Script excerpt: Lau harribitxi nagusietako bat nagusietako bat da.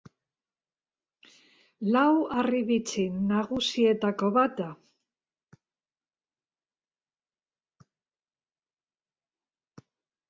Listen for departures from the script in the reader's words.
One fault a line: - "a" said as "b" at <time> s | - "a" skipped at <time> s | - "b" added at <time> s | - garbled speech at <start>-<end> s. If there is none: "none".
- "nagusietako bat" skipped at 4.6 s